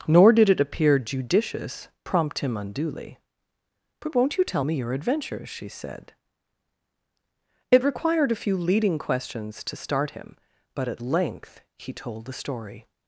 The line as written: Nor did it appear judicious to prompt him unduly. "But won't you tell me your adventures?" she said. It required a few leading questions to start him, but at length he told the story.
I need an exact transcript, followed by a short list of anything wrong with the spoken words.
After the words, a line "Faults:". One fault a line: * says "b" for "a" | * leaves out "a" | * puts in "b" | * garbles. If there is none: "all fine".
Nor did it appear judicious prompt him unduly. "But won't you tell me your adventures?" she said. It required a few leading questions to start him, but at length he told the story.
Faults:
* leaves out "to"